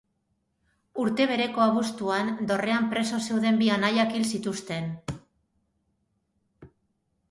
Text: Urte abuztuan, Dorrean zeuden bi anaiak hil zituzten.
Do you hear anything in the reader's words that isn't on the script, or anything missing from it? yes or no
yes